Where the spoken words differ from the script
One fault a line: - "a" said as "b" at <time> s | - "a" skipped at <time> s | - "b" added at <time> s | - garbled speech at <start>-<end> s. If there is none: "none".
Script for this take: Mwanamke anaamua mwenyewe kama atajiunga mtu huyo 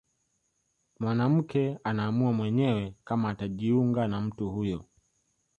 - "na" added at 4.1 s